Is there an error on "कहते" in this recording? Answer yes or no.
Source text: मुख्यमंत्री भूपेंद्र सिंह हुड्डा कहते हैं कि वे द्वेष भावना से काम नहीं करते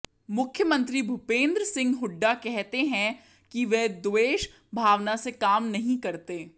no